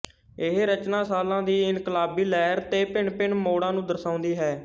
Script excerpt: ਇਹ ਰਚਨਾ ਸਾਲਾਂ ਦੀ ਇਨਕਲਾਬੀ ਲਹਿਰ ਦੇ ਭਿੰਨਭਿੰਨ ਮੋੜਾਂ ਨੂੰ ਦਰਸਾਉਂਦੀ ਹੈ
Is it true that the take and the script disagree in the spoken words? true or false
false